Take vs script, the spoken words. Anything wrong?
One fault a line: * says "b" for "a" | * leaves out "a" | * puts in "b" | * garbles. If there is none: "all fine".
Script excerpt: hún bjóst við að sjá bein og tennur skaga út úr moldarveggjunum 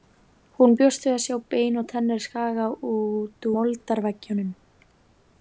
* leaves out "úr"